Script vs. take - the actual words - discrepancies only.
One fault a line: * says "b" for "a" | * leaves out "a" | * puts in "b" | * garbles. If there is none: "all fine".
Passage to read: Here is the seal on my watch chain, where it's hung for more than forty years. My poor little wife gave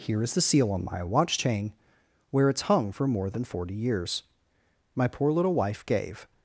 all fine